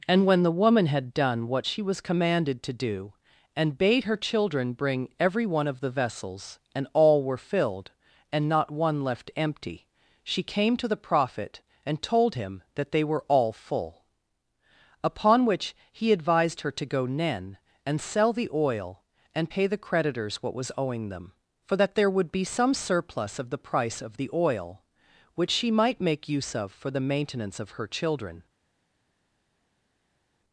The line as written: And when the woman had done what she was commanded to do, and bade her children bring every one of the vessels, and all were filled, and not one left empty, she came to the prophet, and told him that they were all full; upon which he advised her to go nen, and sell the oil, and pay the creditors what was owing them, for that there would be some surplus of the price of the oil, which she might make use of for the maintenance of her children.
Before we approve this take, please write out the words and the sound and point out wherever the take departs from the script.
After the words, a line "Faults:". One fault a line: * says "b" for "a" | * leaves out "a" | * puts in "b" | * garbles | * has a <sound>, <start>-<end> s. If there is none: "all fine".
And when the woman had done what she was commanded to do, and bade her children bring every one of the vessels, and all were filled, and not one left empty, she came to the prophet, and told him that they were all full; upon which he advised her to go nen, and sell the oil, and pay the creditors what was owing them, for that there would be some surplus of the price of the oil, which she might make use of for the maintenance of her children.
Faults:
all fine